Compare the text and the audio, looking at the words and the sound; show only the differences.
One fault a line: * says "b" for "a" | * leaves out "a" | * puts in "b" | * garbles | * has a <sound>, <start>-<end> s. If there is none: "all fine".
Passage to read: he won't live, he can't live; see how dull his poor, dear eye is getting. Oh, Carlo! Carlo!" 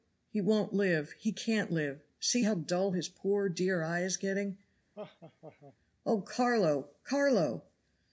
* has a laugh, 4.9-5.8 s